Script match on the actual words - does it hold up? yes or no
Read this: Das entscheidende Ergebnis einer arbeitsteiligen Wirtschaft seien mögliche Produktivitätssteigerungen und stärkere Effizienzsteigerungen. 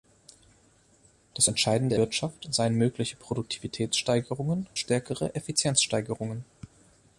no